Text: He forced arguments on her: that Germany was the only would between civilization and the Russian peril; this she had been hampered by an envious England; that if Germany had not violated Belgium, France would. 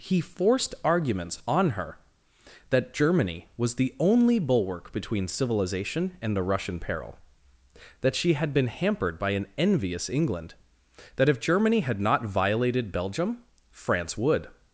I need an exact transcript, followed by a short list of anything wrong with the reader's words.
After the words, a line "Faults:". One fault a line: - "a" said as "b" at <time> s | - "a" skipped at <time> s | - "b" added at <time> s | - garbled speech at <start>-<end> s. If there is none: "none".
He forced arguments on her: that Germany was the only bulwark between civilization and the Russian peril; that she had been hampered by an envious England; that if Germany had not violated Belgium, France would.
Faults:
- "would" said as "bulwark" at 4.4 s
- "this" said as "that" at 8.0 s